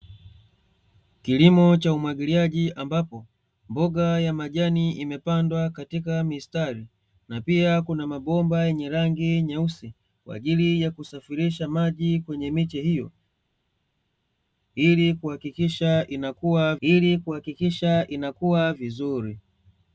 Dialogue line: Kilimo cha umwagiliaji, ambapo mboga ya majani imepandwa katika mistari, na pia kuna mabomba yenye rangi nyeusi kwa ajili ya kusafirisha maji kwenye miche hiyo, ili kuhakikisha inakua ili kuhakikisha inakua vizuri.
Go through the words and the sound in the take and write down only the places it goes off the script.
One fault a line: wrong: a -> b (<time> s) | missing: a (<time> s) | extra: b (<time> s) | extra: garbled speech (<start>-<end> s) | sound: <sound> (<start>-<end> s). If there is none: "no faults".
no faults